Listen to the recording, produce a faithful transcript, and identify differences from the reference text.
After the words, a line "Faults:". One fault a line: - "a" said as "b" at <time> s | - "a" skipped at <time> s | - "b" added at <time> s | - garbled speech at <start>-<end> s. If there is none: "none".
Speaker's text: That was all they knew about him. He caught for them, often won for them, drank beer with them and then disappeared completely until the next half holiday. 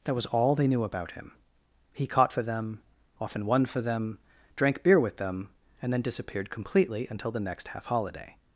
That was all they knew about him. He caught for them, often won for them, drank beer with them and then disappeared completely until the next half holiday.
Faults:
none